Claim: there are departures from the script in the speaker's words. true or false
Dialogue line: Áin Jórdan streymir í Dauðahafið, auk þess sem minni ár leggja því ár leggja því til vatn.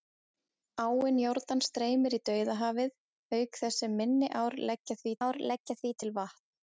false